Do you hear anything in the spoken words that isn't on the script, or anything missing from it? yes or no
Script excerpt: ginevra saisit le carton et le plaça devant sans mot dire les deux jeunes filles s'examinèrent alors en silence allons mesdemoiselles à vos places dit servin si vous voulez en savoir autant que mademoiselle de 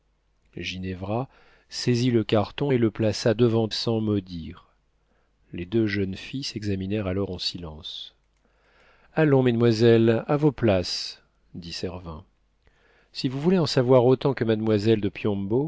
no